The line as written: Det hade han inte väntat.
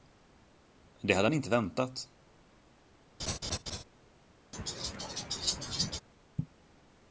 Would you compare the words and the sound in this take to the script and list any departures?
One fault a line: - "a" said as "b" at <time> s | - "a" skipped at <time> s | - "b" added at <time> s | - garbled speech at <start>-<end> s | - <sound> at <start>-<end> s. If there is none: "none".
- laugh at 3.2-3.8 s
- laugh at 4.5-6.0 s